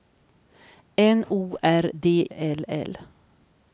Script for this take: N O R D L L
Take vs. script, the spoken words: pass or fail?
pass